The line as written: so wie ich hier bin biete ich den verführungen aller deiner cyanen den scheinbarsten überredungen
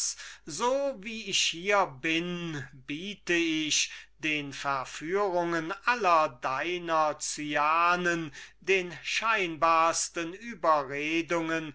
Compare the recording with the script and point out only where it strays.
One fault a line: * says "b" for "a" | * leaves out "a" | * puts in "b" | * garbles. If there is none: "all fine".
all fine